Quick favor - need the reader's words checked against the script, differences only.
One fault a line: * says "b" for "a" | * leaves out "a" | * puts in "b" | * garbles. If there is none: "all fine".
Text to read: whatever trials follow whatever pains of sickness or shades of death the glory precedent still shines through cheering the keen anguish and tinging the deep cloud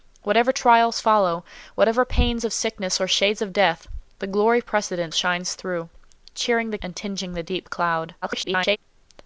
* leaves out "still"
* leaves out "keen anguish"
* garbles